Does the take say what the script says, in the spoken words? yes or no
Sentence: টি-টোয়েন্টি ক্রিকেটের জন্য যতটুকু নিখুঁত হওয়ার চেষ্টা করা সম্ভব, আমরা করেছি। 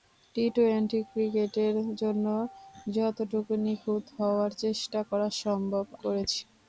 no